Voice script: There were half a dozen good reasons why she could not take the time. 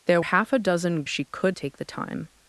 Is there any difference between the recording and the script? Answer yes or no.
yes